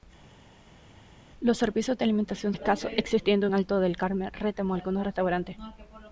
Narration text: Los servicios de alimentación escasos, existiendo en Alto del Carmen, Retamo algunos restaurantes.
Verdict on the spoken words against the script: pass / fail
pass